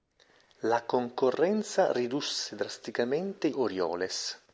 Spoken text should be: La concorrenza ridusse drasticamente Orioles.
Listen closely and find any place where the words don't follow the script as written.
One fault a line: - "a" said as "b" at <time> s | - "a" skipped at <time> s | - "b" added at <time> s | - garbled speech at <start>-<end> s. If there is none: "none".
none